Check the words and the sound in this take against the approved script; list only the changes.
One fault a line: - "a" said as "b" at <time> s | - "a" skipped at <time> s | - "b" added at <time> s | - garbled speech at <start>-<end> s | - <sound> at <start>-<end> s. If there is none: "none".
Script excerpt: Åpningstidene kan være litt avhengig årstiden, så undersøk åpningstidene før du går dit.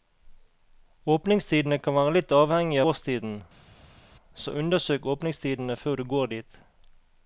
none